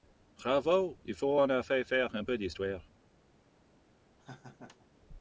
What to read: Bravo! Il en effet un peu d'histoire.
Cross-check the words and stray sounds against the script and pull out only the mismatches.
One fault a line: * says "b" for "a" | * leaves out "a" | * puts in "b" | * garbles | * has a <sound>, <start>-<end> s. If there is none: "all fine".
* puts in "faut"
* puts in "faire"
* has a laugh, 4.2-4.9 s